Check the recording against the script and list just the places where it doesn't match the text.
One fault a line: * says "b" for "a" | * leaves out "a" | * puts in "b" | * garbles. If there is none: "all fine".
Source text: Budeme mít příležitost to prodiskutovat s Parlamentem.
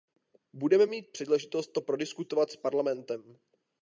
all fine